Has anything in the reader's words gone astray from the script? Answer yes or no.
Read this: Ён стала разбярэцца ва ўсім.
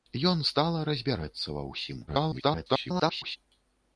yes